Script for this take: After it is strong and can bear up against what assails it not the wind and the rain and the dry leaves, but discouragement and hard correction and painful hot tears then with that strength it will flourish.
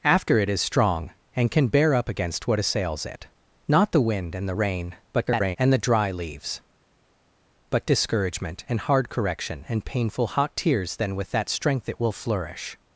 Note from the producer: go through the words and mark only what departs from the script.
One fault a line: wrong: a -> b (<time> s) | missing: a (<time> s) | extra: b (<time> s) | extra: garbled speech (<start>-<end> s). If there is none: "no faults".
extra: garbled speech (5.1-5.6 s)